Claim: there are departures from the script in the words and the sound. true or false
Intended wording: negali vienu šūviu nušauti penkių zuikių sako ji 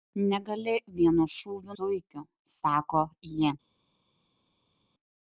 true